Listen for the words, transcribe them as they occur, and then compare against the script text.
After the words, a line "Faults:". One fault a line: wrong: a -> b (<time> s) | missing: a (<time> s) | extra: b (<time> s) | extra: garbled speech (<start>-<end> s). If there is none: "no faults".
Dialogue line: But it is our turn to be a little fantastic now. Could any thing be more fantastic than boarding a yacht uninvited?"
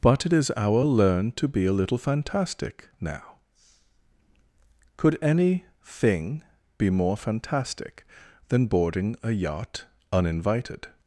But it is our learn to be a little fantastic now. Could any thing be more fantastic than boarding a yacht uninvited?"
Faults:
wrong: turn -> learn (0.8 s)